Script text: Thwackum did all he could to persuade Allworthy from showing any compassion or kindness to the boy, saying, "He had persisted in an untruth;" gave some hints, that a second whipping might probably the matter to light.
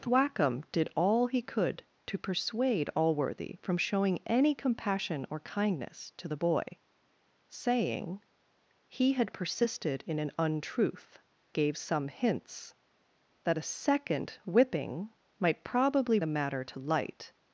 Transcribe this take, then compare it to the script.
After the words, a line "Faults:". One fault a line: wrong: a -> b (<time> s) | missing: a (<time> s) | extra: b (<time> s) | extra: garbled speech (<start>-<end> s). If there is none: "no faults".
Thwackum did all he could to persuade Allworthy from showing any compassion or kindness to the boy, saying, "He had persisted in an untruth;" gave some hints, that a second whipping might probably the matter to light.
Faults:
no faults